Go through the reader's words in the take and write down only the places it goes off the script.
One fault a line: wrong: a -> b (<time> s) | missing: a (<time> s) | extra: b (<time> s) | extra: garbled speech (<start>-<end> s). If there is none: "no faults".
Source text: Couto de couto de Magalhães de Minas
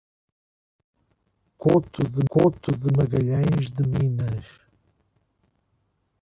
no faults